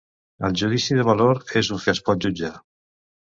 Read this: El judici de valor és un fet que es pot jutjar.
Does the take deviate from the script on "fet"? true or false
true